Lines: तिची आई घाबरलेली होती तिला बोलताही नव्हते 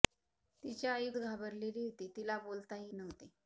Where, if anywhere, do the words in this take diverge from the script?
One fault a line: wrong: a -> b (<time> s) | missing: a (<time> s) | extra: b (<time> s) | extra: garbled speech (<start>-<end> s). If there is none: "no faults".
no faults